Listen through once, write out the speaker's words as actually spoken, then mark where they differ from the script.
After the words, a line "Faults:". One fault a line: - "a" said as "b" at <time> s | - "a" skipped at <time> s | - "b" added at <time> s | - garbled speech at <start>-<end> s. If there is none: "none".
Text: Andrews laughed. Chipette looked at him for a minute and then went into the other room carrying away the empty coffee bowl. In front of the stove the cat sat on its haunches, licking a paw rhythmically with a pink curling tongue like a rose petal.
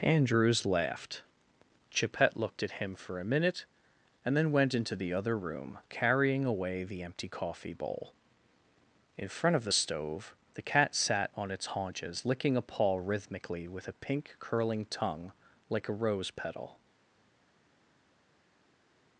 Andrews laughed. Chipette looked at him for a minute and then went into the other room carrying away the empty coffee bowl. In front of the stove the cat sat on its haunches, licking a paw rhythmically with a pink curling tongue like a rose petal.
Faults:
none